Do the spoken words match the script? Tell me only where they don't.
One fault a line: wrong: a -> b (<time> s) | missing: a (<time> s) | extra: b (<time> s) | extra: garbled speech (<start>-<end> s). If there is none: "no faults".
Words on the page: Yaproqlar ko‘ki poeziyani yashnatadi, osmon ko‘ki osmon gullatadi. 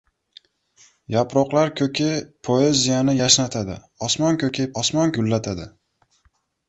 no faults